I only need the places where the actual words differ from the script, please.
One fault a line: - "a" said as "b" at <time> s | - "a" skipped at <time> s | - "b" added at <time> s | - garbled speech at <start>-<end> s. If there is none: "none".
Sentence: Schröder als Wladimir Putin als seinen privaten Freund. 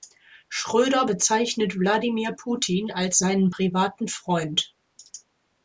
- "als" said as "bezeichnet" at 1.0 s